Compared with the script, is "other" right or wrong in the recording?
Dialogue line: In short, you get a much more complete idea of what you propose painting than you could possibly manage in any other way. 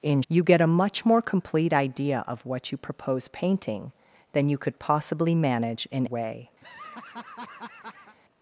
wrong